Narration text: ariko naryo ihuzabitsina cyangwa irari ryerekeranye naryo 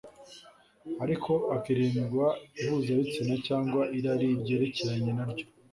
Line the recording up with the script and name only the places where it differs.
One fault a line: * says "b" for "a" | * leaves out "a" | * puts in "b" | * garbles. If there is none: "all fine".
* says "hakirindwa" for "naryo"